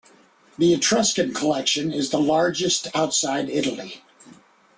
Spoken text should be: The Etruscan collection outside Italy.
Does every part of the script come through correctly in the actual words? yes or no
no